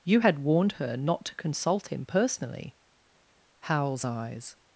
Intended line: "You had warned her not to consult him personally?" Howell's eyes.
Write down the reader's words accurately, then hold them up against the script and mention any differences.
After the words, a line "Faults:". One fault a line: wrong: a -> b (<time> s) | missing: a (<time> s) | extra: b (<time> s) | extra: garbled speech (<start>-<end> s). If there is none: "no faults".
"You had warned her not to consult him personally?" Howell's eyes.
Faults:
no faults